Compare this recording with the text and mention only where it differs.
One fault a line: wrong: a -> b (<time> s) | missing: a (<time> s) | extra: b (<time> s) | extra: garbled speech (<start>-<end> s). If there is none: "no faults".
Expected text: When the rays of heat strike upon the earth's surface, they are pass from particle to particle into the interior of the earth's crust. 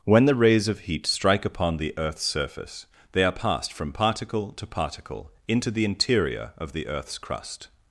wrong: pass -> passed (3.3 s)